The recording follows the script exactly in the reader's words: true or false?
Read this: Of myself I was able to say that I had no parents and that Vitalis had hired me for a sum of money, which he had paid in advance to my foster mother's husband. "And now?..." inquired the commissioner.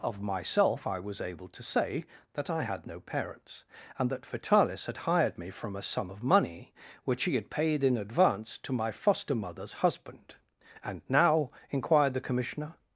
false